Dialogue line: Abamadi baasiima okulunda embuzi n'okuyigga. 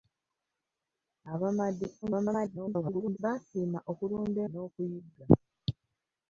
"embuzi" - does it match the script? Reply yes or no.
no